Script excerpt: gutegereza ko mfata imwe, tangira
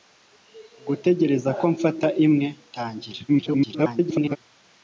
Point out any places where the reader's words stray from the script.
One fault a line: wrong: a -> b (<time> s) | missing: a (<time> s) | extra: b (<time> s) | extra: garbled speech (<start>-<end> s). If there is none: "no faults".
extra: garbled speech (3.3-4.4 s)